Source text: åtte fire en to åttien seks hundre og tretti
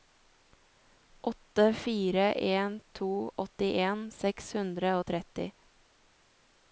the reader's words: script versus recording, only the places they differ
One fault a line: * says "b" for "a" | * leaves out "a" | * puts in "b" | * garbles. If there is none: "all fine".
all fine